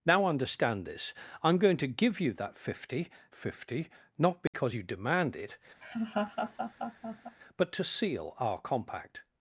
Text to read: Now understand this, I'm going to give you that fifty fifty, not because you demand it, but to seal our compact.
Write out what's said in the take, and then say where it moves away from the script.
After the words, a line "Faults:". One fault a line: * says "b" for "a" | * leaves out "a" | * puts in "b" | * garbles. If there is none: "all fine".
Now understand this, I'm going to give you that fifty fifty, not because you demand it, but to seal our compact.
Faults:
all fine